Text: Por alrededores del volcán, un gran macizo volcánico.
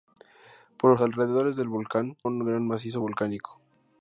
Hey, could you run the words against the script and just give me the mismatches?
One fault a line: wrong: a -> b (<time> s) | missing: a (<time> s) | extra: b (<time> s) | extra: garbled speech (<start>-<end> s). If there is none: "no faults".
no faults